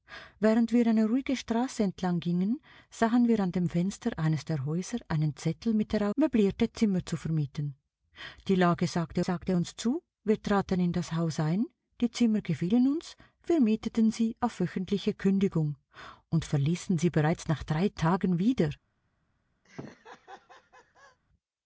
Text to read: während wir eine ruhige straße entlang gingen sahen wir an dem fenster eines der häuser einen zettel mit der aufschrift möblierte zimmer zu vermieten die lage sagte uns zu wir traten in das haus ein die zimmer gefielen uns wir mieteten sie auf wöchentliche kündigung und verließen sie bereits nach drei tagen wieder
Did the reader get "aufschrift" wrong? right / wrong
wrong